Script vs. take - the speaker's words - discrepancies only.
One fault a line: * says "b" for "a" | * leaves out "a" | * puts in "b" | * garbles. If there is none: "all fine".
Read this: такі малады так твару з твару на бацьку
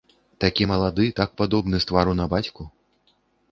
* says "падобны" for "твару"